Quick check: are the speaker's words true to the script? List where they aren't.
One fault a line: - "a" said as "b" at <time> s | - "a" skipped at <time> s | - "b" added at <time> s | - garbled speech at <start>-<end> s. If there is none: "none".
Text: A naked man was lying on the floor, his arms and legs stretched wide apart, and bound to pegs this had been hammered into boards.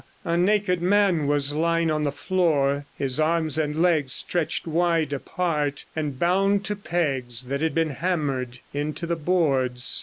- "this" said as "that" at 7.4 s
- "the" added at 9.0 s